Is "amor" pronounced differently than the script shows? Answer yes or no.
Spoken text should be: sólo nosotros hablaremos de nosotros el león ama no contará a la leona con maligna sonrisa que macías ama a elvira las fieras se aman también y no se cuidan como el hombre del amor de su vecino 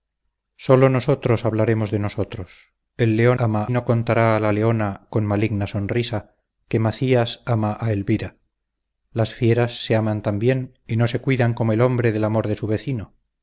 no